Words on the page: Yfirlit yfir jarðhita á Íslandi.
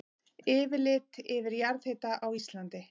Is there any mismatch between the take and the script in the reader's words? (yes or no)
no